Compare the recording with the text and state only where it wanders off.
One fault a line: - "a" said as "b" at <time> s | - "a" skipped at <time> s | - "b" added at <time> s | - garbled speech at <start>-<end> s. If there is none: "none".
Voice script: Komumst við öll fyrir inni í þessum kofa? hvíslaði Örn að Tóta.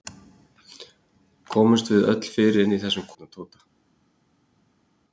- "kofa hvíslaði" skipped at 3.1 s